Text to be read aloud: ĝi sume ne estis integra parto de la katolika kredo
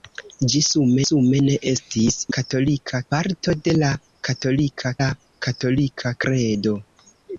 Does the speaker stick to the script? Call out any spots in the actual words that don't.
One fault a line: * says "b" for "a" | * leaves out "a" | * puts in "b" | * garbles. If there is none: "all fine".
* puts in "sume"
* says "katolika" for "integra"
* puts in "la katolika"